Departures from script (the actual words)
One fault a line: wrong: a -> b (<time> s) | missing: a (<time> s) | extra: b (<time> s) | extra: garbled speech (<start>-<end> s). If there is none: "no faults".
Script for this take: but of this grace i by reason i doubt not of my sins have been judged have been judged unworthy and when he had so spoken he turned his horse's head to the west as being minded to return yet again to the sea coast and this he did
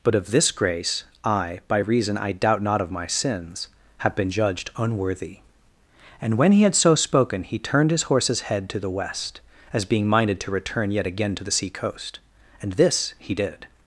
missing: have been judged (4.7 s)